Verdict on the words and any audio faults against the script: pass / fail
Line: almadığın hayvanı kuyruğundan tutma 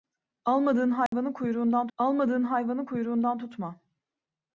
fail